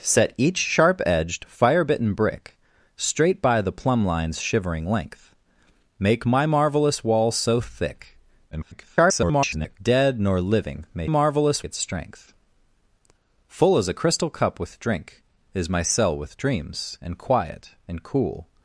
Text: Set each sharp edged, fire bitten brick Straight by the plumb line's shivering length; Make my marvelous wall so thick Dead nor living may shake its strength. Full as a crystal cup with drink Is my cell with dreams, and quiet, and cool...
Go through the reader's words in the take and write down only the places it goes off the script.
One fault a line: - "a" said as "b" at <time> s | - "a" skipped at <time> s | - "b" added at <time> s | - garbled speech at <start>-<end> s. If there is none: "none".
- garbled speech at 8.5-9.8 s
- "shake" said as "marvelous" at 11.1 s